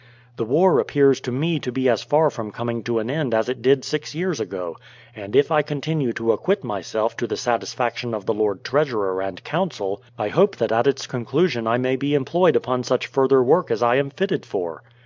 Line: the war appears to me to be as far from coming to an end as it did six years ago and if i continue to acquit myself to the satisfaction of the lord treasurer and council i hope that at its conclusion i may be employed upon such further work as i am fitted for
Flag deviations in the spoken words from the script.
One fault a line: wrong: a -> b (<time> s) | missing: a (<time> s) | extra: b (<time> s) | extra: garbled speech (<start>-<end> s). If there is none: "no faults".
no faults